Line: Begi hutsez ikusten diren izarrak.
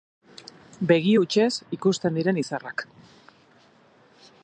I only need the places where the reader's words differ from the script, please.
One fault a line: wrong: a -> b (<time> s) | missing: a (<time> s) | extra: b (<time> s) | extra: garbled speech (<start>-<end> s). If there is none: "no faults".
no faults